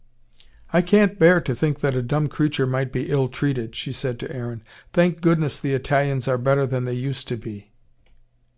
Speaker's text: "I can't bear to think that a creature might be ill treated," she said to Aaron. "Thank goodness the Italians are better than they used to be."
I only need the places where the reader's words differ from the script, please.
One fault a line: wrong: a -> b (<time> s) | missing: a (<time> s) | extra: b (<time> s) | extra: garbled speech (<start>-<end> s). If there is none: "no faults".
extra: dumb (2.0 s)